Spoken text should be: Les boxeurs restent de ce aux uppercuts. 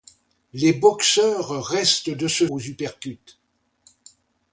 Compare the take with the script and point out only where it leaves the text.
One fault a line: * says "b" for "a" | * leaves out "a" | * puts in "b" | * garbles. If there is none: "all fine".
all fine